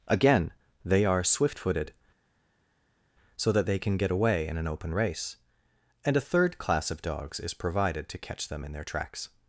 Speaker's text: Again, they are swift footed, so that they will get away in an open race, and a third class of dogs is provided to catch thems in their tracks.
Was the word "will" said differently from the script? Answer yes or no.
yes